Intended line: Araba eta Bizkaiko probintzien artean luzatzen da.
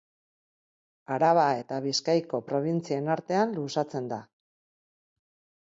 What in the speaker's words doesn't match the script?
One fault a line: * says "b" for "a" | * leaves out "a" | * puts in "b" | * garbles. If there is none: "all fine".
all fine